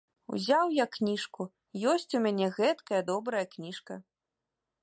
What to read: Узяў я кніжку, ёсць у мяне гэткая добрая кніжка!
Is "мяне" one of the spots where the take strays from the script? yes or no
no